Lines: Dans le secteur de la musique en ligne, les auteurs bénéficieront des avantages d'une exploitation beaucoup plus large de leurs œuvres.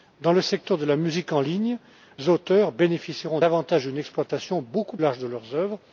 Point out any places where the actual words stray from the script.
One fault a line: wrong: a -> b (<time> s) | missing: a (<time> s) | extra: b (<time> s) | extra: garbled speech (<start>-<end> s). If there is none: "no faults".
missing: les (1.8 s)
missing: des (3.4 s)
missing: plus (5.0 s)